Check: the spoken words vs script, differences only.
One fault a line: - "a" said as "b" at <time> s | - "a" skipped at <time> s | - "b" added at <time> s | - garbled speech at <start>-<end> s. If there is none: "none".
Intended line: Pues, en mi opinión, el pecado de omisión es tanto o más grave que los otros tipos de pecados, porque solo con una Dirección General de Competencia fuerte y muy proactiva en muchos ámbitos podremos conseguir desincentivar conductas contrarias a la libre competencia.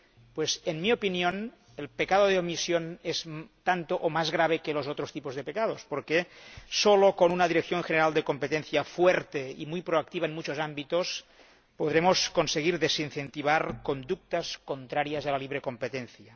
none